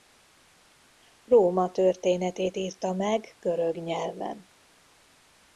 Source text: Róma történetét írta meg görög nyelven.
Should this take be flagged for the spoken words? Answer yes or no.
no